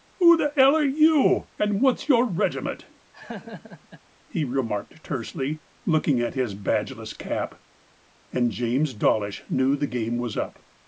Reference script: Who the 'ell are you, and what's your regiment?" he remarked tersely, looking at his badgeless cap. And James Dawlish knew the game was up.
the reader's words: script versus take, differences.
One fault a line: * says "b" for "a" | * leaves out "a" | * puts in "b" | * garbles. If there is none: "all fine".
all fine